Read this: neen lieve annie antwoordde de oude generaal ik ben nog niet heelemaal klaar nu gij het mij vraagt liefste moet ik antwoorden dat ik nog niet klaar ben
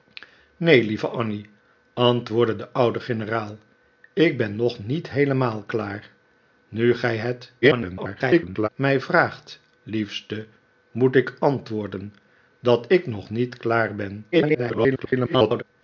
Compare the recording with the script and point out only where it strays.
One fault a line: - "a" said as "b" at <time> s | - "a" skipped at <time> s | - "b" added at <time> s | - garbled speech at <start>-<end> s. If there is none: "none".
- garbled speech at 7.6-8.7 s
- garbled speech at 14.3-15.6 s